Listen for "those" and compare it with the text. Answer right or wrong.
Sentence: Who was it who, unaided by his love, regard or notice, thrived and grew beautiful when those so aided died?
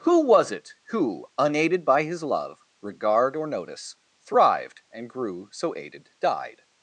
wrong